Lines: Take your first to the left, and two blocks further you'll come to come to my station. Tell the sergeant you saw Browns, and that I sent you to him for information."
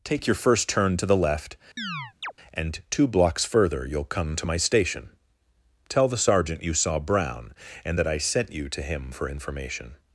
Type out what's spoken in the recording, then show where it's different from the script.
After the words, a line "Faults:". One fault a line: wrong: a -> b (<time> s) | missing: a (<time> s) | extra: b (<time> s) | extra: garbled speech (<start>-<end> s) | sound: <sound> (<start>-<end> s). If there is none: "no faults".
Take your first turn to the left, and two blocks further you'll come to my station. Tell the sergeant you saw Brown, and that I sent you to him for information."
Faults:
extra: turn (0.7 s)
sound: chirp (1.8-2.3 s)
missing: come to (4.4 s)
wrong: Browns -> Brown (7.0 s)